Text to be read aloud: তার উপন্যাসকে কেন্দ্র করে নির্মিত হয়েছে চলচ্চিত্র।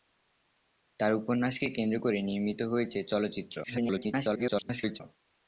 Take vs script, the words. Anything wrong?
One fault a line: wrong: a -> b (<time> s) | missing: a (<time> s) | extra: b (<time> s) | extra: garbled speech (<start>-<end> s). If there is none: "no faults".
extra: garbled speech (3.6-5.0 s)